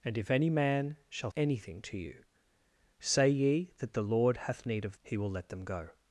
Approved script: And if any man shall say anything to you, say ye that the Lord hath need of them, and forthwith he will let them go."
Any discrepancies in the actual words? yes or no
yes